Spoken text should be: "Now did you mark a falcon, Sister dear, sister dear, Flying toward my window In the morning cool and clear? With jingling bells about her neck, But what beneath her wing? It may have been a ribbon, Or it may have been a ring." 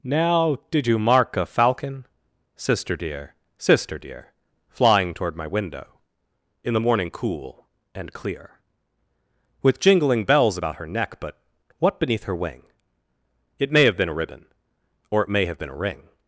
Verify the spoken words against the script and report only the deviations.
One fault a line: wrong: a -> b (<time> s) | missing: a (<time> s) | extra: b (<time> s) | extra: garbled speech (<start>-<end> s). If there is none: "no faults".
no faults